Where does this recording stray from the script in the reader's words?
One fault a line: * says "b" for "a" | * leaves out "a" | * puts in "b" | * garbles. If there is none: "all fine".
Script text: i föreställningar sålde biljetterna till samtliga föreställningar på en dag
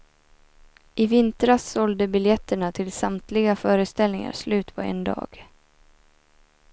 * says "vintras" for "föreställningar"
* puts in "slut"